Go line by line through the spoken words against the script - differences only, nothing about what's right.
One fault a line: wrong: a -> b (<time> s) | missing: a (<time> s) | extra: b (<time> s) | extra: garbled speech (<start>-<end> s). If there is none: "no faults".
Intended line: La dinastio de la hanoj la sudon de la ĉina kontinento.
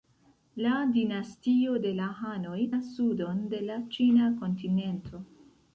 no faults